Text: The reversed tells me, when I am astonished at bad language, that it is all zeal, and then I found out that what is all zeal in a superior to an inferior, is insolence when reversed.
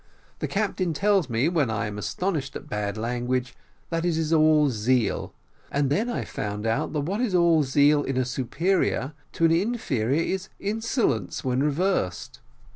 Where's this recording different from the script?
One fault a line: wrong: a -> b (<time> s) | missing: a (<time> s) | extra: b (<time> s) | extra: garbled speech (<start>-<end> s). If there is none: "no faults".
wrong: reversed -> captain (0.5 s)